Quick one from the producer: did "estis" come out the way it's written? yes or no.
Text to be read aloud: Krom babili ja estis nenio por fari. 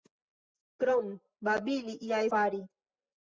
no